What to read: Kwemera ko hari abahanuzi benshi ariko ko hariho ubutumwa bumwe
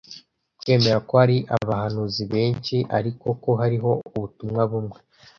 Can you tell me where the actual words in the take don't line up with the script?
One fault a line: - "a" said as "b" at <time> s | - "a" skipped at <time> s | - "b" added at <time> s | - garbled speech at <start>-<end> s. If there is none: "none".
none